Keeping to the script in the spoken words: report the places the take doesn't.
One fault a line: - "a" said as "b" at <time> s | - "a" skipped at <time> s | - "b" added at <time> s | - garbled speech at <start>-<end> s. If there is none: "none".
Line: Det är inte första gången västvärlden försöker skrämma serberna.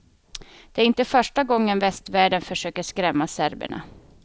none